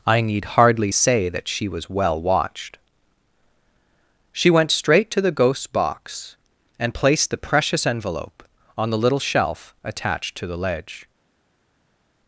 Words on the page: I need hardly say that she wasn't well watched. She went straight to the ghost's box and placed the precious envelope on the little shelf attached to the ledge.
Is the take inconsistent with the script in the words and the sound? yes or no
yes